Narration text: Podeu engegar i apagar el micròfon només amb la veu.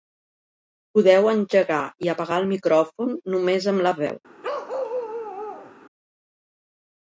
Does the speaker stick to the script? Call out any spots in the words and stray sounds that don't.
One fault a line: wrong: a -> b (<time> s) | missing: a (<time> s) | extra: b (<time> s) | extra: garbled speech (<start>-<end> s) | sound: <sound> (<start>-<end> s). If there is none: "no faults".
sound: bark (4.4-5.7 s)